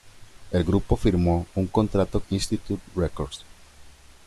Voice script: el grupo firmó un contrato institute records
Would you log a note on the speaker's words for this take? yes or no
no